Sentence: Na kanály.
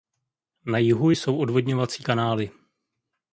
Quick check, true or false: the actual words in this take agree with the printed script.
false